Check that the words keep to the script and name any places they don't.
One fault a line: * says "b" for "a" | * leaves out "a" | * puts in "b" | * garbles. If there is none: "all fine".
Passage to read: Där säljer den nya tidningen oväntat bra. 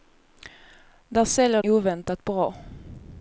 * leaves out "den nya tidningen"